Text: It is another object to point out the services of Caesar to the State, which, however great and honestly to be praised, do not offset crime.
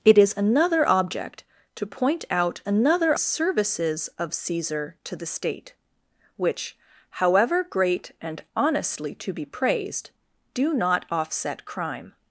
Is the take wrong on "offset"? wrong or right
right